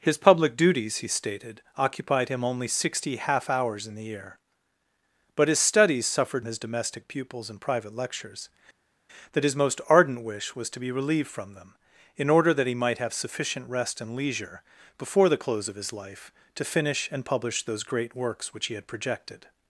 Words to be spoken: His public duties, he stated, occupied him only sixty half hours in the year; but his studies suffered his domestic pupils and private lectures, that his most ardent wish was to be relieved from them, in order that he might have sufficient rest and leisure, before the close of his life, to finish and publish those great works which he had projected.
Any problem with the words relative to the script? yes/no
no